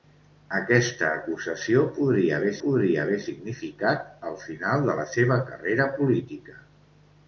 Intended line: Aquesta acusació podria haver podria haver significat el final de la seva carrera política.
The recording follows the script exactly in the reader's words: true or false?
true